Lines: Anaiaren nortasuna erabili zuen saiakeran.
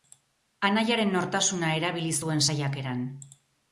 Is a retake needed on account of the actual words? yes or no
no